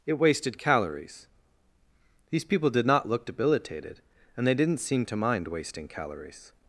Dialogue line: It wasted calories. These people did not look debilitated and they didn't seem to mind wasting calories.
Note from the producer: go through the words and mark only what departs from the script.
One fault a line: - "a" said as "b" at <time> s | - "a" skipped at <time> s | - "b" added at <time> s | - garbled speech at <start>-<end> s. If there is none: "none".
none